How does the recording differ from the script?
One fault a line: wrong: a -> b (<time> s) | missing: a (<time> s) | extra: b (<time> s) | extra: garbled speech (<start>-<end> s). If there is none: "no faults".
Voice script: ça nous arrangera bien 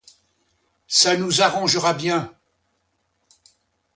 no faults